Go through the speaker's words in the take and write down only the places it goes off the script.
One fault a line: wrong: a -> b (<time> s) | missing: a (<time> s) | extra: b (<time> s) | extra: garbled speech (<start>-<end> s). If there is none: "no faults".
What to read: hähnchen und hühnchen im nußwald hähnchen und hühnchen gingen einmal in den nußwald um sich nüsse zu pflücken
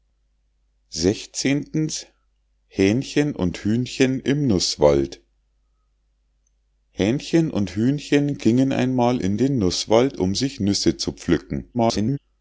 extra: garbled speech (11.7-12.2 s)